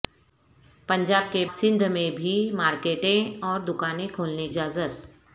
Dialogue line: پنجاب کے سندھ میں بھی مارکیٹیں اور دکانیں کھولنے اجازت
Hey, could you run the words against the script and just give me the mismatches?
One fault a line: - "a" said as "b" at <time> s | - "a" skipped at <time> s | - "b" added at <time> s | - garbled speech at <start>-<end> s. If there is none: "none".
none